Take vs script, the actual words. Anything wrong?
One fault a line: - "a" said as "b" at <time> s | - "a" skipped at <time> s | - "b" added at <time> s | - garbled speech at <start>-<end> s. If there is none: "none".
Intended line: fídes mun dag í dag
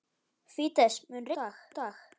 none